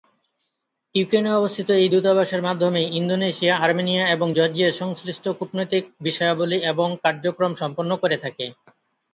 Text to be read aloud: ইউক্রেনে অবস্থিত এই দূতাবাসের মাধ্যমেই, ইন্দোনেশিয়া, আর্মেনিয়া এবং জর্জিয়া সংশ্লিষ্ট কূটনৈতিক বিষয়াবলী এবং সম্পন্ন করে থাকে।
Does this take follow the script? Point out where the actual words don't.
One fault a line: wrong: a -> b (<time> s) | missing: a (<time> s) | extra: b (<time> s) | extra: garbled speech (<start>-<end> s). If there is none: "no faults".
extra: কার্যক্রম (7.0 s)